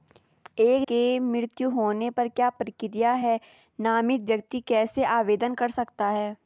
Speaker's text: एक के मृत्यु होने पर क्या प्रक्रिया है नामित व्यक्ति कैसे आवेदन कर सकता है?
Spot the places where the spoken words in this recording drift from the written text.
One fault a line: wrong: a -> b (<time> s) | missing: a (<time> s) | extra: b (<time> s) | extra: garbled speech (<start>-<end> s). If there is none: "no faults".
no faults